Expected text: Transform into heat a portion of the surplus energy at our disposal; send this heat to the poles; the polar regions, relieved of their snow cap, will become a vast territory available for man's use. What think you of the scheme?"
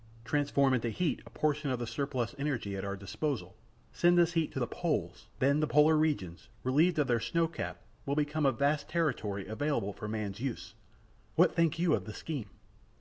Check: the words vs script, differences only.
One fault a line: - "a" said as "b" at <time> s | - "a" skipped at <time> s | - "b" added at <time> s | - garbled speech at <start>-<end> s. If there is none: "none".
- "then" added at 5.4 s